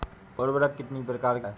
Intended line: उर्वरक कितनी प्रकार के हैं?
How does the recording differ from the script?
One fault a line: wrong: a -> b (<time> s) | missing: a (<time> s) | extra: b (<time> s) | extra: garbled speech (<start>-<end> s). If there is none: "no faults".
no faults